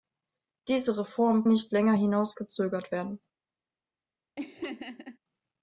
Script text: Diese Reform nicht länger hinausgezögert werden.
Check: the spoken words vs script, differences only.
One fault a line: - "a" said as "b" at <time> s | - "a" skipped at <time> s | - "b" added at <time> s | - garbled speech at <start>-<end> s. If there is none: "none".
none